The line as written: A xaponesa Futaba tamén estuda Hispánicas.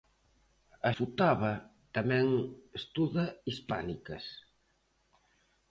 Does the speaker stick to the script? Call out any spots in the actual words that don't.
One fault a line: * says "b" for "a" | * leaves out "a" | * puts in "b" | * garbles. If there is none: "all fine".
* leaves out "xaponesa"